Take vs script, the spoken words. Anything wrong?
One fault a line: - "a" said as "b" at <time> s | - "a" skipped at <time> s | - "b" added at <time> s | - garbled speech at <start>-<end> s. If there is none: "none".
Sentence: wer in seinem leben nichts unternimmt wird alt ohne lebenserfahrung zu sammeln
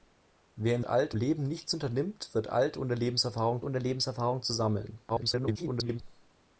- "seinem" said as "alt" at 0.8 s
- "ohne lebenserfahrung" added at 3.6 s
- garbled speech at 5.1-6.0 s